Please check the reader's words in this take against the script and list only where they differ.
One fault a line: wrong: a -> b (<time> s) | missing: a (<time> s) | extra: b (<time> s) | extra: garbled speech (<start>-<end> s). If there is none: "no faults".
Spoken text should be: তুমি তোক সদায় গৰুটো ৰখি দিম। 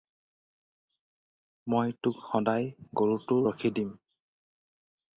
wrong: তুমি -> মই (1.7 s)